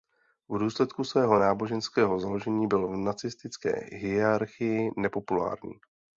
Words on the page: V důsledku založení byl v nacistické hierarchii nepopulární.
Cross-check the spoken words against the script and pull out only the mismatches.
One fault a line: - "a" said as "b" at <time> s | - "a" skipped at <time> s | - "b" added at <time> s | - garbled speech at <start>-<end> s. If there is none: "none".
- "svého náboženského" added at 1.0 s